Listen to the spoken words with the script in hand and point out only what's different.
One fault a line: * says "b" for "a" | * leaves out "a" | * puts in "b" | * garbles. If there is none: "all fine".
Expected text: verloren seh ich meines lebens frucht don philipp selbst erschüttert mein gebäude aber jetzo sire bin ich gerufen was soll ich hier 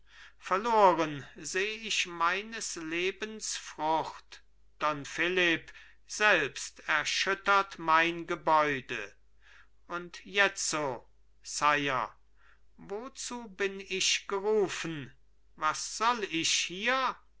* says "und" for "aber"
* puts in "wozu"